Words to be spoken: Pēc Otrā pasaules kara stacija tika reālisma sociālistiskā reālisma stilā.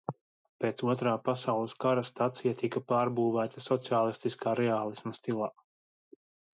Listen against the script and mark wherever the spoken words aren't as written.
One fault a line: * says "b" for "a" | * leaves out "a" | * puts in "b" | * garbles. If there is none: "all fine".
* says "pārbūvēta" for "reālisma"